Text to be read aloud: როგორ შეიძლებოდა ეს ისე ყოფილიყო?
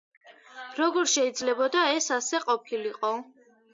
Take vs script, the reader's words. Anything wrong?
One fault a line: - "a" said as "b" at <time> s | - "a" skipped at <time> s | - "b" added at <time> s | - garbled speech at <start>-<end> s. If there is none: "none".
- "ისე" said as "ასე" at 2.2 s